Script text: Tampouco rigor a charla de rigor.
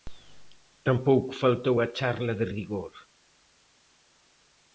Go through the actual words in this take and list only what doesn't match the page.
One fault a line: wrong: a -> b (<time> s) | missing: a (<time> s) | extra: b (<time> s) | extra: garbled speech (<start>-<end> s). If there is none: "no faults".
wrong: rigor -> faltou (1.4 s)